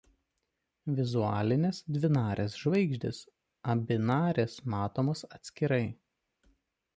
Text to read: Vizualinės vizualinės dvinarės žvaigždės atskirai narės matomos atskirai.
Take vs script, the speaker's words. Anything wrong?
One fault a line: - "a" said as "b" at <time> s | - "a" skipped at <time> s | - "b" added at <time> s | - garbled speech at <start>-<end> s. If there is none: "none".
- "vizualinės" skipped at 1.8 s
- "atskirai" said as "abi" at 3.7 s